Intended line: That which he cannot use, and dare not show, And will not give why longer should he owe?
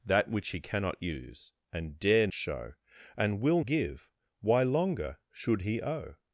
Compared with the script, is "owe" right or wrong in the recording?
right